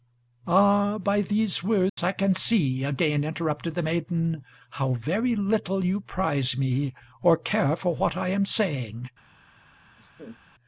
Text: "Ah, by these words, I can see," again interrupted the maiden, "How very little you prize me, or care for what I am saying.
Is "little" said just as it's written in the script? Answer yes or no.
yes